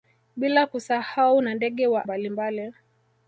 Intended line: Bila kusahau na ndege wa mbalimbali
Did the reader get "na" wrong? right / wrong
right